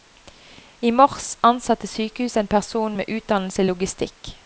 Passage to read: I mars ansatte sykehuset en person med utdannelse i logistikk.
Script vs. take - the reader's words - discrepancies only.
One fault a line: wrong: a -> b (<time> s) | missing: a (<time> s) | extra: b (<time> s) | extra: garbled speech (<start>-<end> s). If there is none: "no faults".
no faults